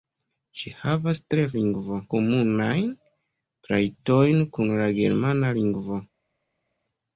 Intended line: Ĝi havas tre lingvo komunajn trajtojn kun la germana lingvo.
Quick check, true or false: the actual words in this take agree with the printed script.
true